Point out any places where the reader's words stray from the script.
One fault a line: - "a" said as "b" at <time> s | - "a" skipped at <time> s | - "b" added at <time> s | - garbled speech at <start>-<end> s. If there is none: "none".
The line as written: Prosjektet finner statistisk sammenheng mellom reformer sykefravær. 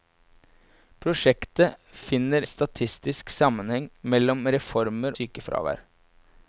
none